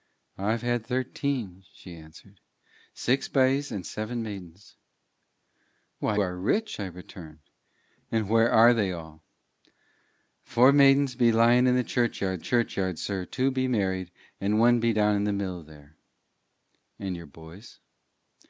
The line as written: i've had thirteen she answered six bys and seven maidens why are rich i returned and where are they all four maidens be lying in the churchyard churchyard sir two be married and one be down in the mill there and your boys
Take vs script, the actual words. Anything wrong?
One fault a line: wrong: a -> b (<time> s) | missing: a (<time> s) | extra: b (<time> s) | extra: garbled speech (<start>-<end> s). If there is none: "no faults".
no faults